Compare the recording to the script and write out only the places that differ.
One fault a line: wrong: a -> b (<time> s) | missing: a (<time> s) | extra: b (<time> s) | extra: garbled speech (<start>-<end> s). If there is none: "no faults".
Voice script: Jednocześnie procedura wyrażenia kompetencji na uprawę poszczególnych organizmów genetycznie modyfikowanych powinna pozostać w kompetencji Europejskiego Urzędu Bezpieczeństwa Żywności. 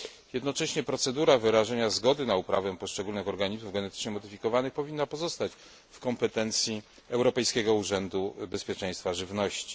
wrong: kompetencji -> zgody (1.9 s)